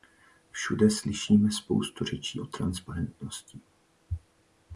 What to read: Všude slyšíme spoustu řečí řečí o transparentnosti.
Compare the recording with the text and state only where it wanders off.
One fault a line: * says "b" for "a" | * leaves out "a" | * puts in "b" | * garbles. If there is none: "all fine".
* leaves out "řečí"